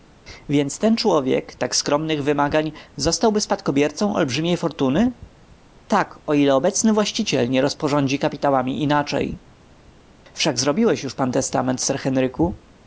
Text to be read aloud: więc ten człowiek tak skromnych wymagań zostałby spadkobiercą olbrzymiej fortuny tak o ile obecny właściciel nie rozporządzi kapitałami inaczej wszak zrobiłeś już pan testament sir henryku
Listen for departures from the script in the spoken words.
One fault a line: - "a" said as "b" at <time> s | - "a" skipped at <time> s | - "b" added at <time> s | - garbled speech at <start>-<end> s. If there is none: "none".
none